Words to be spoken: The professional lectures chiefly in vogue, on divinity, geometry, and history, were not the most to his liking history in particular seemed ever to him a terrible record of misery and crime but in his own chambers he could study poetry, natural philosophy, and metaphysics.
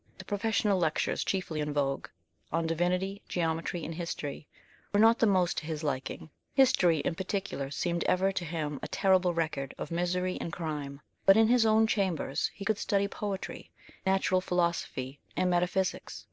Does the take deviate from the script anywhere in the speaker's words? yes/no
no